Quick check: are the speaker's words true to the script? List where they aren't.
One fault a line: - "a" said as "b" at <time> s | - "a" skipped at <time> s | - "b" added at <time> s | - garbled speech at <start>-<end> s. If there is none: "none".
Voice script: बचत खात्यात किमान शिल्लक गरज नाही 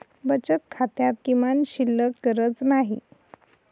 none